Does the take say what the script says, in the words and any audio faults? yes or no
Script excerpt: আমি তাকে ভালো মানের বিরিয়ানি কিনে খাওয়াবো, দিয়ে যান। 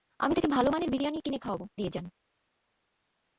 yes